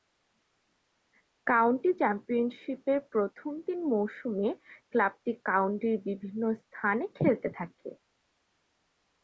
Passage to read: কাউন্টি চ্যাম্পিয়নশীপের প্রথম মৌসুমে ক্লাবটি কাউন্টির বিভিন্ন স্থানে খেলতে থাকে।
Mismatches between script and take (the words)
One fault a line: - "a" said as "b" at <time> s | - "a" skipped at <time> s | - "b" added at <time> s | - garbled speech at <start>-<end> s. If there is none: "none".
- "তিন" added at 3.6 s